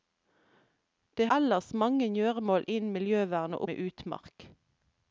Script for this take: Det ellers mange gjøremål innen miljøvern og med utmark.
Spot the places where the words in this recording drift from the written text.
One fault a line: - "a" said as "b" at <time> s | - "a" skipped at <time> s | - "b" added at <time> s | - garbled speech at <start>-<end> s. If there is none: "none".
none